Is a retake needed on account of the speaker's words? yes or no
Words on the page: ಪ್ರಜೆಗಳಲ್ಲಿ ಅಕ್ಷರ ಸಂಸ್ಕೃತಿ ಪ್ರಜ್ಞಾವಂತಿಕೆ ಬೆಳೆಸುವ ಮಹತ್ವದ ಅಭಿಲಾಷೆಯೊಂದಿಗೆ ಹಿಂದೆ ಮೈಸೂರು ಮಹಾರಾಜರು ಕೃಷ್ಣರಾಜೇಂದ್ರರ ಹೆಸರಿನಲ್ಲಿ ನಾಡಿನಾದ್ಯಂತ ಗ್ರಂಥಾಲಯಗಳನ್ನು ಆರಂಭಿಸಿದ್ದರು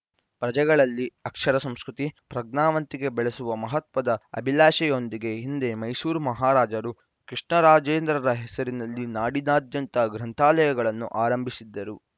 no